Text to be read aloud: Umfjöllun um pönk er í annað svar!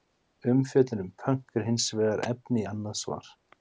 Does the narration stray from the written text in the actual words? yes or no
yes